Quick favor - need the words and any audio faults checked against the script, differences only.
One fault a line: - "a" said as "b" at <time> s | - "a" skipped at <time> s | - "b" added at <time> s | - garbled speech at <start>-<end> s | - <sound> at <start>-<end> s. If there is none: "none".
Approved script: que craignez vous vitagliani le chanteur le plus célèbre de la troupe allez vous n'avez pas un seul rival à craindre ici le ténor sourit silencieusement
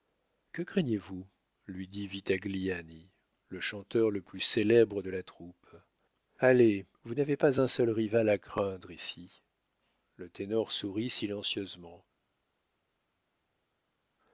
- "lui dit" added at 1.7 s